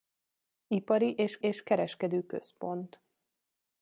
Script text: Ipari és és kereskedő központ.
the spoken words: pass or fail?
pass